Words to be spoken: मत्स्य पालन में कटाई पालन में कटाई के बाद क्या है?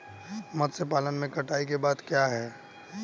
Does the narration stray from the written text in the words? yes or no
yes